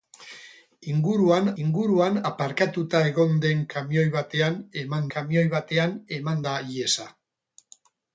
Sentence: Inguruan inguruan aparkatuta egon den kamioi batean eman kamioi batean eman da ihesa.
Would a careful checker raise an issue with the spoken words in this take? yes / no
no